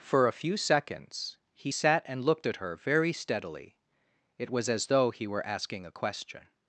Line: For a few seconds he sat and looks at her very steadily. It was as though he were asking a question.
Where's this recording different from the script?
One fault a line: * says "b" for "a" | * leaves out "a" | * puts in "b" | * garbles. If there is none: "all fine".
* says "looked" for "looks"